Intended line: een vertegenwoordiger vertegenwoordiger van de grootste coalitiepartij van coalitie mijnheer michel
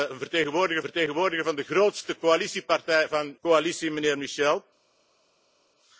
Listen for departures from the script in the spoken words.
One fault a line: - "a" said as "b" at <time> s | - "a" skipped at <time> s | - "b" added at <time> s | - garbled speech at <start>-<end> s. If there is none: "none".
none